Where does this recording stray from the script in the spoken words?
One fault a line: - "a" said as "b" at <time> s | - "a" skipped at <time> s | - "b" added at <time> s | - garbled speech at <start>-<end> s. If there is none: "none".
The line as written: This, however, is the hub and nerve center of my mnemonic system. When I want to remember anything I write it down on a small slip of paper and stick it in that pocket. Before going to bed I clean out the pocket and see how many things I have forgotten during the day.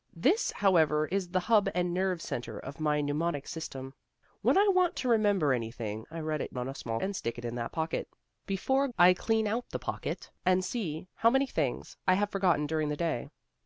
- "down" skipped at 6.5 s
- "slip of paper" skipped at 7.0 s
- "going to bed" skipped at 8.9 s